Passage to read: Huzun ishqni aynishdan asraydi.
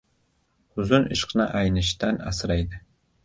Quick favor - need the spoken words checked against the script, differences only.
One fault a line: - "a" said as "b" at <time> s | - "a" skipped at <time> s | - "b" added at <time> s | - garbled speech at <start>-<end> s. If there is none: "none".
none